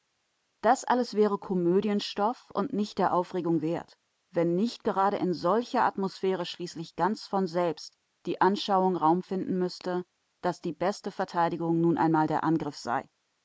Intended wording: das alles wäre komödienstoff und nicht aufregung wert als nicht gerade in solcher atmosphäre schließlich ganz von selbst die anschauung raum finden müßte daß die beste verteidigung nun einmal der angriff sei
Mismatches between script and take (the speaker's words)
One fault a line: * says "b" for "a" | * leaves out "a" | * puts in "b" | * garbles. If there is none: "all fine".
* puts in "der"
* says "wenn" for "als"